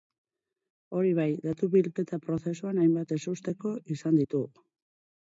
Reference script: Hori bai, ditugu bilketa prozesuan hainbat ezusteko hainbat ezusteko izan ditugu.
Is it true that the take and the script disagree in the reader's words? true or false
true